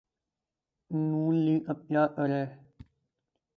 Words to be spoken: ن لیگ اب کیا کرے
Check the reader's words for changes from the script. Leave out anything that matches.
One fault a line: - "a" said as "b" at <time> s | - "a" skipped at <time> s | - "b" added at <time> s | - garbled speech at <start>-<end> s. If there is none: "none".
none